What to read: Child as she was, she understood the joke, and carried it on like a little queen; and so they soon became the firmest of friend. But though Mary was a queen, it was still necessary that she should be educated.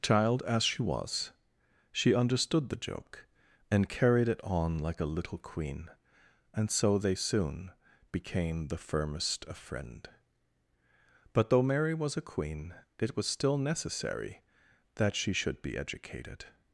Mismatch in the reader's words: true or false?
false